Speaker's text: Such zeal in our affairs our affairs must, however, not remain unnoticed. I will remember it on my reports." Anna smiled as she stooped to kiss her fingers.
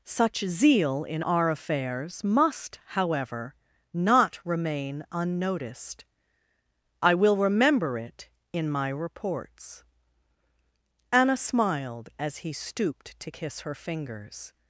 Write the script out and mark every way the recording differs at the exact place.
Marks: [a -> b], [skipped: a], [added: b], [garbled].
Such zeal in our affairs [skipped: our affairs] must, however, not remain unnoticed. I will remember it [on -> in] my reports." Anna smiled as [she -> he] stooped to kiss her fingers.